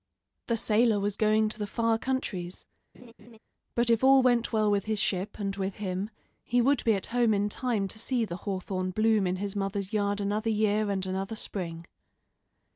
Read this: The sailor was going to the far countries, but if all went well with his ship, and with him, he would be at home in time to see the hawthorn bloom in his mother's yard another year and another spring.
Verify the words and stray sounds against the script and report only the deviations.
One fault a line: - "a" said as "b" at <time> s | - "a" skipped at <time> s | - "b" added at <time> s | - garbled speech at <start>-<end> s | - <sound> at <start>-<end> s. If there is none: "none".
- laugh at 2.9-3.4 s